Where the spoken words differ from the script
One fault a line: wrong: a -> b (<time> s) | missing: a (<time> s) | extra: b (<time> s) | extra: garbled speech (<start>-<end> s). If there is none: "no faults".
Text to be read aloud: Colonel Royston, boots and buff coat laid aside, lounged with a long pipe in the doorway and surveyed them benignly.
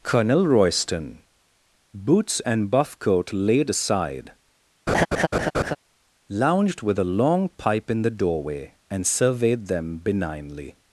no faults